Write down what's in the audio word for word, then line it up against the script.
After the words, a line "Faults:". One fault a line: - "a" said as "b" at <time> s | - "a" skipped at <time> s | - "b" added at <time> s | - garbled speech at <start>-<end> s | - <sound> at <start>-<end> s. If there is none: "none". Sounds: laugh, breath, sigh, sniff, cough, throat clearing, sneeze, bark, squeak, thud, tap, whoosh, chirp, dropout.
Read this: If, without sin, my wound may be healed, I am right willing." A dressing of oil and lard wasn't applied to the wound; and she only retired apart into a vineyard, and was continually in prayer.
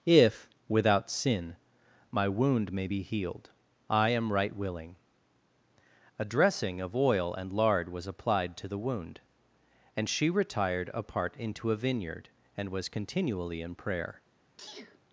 If, without sin, my wound may be healed, I am right willing." A dressing of oil and lard was applied to the wound; and she retired apart into a vineyard, and was continually in prayer.
Faults:
- "wasn't" said as "was" at 7.9 s
- "only" skipped at 10.3 s
- sneeze at 14.6-15.0 s